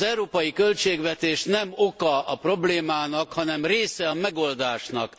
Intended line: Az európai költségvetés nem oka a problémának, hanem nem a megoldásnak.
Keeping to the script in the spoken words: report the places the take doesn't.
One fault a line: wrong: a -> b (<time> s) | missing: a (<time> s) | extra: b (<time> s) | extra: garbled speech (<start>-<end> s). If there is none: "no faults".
wrong: nem -> része (3.7 s)